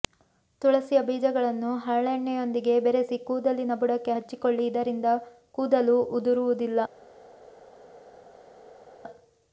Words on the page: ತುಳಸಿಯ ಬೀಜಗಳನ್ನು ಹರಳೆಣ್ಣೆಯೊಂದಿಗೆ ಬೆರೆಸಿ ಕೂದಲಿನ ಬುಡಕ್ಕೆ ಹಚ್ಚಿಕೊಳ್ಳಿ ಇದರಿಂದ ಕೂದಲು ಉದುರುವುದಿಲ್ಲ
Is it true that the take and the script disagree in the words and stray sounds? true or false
false